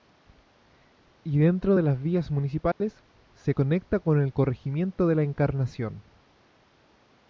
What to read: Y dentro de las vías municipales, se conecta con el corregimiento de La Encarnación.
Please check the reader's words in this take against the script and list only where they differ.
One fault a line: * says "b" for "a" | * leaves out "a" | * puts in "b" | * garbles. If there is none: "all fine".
all fine